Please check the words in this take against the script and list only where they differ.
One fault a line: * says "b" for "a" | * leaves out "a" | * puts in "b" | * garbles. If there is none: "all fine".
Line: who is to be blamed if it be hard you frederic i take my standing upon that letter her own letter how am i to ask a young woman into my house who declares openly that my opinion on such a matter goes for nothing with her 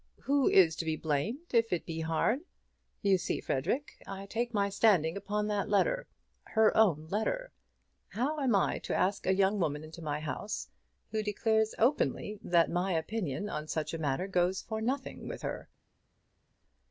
* puts in "see"